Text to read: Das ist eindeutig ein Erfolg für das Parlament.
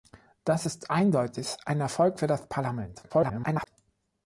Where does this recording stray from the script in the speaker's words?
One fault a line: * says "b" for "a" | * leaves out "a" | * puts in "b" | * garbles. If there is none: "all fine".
* garbles